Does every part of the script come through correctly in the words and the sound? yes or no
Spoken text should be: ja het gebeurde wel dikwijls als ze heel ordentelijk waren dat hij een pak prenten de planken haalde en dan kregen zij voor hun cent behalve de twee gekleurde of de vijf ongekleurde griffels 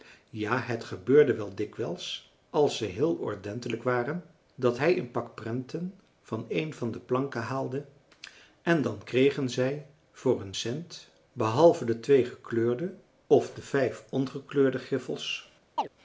no